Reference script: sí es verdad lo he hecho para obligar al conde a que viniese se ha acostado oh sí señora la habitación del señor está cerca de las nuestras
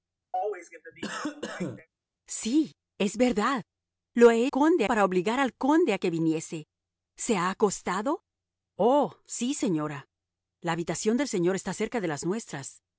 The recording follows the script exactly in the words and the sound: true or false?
false